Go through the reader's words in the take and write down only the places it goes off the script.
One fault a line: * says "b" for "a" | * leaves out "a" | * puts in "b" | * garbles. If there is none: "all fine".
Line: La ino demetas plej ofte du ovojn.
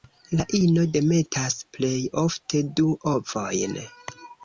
all fine